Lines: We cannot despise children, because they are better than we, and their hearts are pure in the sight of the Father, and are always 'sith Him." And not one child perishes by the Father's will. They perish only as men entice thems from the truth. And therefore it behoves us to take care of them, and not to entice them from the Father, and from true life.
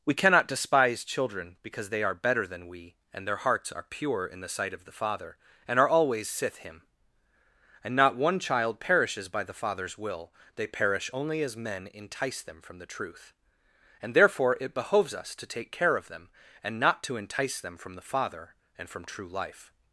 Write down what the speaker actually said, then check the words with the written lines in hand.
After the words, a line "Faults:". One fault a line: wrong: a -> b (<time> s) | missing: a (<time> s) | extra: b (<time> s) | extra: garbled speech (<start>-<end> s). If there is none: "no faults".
We cannot despise children, because they are better than we, and their hearts are pure in the sight of the Father, and are always 'sith Him." And not one child perishes by the Father's will. They perish only as men entice them from the truth. And therefore it behoves us to take care of them, and not to entice them from the Father, and from true life.
Faults:
wrong: thems -> them (12.4 s)